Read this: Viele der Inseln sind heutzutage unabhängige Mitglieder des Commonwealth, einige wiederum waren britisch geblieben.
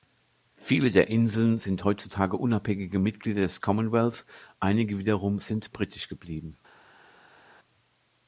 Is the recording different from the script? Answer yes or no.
yes